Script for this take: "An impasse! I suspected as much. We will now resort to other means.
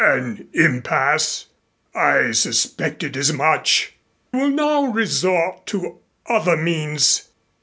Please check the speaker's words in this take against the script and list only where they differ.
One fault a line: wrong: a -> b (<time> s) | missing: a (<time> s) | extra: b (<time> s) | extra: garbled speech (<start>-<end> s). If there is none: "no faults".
missing: We (3.9 s)